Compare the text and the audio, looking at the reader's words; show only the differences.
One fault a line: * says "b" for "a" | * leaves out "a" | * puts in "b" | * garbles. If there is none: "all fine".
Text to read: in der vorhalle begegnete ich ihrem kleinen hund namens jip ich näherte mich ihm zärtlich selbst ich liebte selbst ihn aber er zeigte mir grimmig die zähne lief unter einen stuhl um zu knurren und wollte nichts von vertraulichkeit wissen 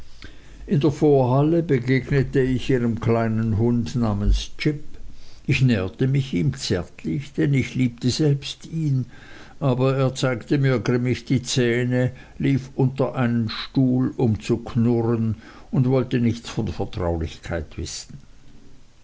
* says "denn" for "selbst"